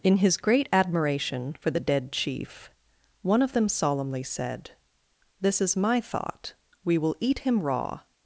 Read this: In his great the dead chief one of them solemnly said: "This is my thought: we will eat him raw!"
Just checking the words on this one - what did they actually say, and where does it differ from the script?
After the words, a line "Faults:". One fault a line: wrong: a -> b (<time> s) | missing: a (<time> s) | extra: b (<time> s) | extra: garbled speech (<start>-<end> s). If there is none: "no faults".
In his great admiration for the dead chief one of them solemnly said: "This is my thought: we will eat him raw!"
Faults:
extra: admiration for (0.7 s)